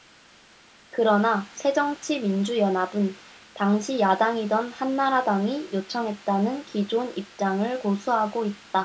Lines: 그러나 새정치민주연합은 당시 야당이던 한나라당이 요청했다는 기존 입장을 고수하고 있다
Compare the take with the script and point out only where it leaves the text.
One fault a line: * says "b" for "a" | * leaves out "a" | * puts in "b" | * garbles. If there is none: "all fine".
all fine